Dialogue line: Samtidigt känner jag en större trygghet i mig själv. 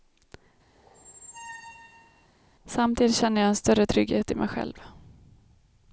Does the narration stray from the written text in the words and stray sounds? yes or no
yes